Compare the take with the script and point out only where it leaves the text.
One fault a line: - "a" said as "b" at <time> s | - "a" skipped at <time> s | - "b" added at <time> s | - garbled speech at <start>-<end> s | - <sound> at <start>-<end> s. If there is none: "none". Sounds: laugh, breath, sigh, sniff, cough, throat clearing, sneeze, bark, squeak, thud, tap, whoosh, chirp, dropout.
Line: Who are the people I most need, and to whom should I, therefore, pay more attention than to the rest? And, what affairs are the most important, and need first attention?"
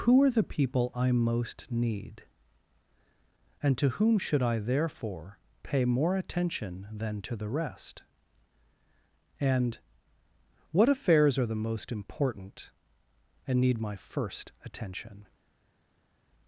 - "my" added at 13.8 s